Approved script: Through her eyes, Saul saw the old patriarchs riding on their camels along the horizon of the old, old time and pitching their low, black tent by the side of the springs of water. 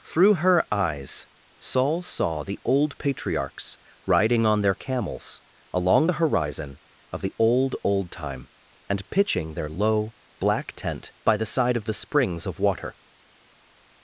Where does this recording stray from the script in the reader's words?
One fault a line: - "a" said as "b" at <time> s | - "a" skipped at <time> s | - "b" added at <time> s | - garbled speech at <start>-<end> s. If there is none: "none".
none